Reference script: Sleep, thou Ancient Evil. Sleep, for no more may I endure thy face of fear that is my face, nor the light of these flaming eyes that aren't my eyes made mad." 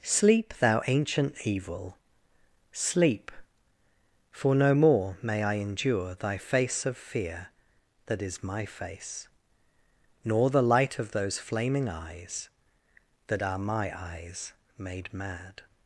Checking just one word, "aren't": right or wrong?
wrong